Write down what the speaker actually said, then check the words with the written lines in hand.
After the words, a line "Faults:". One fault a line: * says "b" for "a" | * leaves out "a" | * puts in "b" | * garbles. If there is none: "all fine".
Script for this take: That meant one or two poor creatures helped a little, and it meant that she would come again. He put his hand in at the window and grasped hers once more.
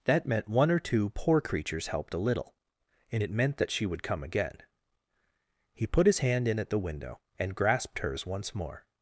That meant one or two poor creatures helped a little, and it meant that she would come again. He put his hand in at the window and grasped hers once more.
Faults:
all fine